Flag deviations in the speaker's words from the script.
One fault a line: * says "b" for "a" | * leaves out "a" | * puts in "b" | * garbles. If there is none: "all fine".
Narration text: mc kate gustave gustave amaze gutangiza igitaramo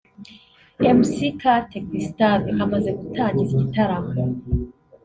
* leaves out "gustave"